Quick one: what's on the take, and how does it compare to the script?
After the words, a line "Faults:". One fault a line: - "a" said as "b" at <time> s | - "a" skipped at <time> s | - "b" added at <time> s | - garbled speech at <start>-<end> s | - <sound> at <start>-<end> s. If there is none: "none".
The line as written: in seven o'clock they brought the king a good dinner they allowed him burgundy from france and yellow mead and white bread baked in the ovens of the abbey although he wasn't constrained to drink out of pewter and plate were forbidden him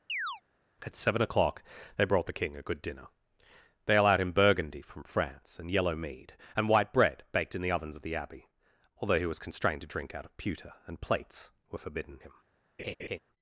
at seven o'clock they brought the king a good dinner they allowed him burgundy from france and yellow mead and white bread baked in the ovens of the abbey although he was constrained to drink out of pewter and plates were forbidden him
Faults:
- chirp at 0.1-0.4 s
- "in" said as "at" at 0.8 s
- "wasn't" said as "was" at 9.3 s
- "plate" said as "plates" at 11.0 s
- laugh at 12.8-13.2 s